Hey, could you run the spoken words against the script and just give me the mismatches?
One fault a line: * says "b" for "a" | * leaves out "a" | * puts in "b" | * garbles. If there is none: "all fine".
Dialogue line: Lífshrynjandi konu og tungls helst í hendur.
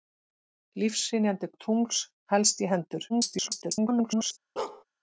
* leaves out "konu"
* garbles